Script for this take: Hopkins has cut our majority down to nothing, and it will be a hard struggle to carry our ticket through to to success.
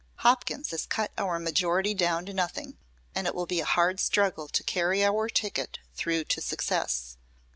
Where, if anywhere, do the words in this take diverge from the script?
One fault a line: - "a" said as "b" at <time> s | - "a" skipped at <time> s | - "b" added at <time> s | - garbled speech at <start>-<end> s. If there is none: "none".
- "to" skipped at 6.4 s